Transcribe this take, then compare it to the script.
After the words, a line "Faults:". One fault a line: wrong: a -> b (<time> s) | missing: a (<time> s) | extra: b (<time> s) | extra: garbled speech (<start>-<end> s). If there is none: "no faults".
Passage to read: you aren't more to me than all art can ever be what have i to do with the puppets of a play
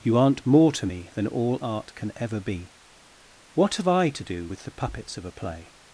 you aren't more to me than all art can ever be what have i to do with the puppets of a play
Faults:
no faults